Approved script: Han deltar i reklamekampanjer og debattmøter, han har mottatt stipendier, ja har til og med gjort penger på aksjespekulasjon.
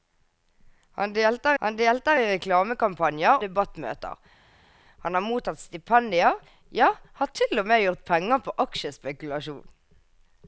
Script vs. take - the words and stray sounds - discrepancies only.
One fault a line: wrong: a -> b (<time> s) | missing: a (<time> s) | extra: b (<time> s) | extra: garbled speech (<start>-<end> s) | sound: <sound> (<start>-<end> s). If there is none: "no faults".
extra: han deltar (1.6 s)
missing: og (3.4 s)